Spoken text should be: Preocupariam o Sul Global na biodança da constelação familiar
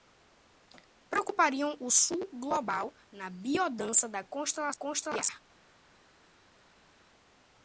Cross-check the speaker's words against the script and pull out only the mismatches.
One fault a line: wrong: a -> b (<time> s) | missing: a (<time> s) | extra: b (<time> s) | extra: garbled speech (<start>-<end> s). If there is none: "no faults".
no faults